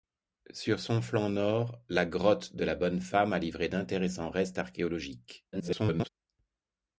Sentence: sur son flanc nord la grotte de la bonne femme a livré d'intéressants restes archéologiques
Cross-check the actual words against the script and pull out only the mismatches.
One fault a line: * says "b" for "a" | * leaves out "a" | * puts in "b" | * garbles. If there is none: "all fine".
* garbles